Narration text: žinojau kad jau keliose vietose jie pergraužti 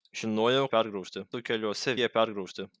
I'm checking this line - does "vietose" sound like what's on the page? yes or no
no